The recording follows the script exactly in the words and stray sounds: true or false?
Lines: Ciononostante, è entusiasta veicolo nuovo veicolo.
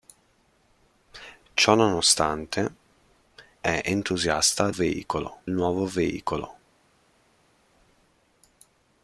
true